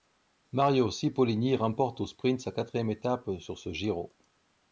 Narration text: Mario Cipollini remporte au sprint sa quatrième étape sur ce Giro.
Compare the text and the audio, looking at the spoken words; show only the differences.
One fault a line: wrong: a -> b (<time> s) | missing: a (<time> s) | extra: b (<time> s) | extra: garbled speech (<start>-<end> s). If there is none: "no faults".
no faults